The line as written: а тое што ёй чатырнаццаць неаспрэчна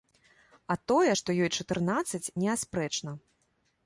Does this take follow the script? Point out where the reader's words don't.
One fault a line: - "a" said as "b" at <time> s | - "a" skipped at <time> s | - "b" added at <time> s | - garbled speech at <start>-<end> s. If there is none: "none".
none